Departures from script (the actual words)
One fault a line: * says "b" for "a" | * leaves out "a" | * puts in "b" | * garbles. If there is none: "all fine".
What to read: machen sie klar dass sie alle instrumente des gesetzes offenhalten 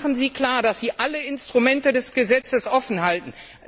all fine